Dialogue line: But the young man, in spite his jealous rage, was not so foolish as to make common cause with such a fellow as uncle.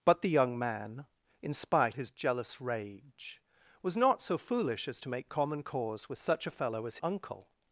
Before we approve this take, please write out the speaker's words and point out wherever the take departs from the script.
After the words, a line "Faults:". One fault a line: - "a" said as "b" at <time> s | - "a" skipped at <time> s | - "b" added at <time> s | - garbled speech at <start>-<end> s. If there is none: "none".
But the young man, in spite his jealous rage, was not so foolish as to make common cause with such a fellow as uncle.
Faults:
none